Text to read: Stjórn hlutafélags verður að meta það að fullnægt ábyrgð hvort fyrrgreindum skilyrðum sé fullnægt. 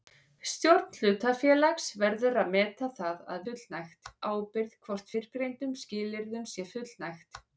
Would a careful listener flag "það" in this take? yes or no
no